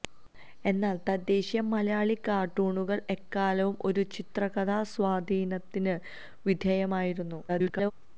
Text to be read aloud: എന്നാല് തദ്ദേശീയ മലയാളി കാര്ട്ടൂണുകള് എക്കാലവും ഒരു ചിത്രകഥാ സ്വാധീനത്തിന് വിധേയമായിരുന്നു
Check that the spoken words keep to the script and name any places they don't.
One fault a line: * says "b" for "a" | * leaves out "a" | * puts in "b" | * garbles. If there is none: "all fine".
* garbles